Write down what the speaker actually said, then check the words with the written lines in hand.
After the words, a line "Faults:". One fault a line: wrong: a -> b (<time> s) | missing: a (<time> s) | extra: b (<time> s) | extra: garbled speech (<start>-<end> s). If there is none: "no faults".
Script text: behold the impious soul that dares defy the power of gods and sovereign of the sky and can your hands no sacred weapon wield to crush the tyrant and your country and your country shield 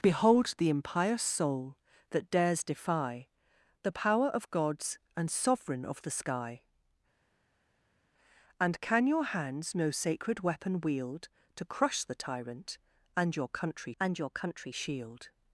behold the impious soul that dares defy the power of gods and sovereign of the sky and can your hands no sacred weapon wield to crush the tyrant and your country and your country shield
Faults:
no faults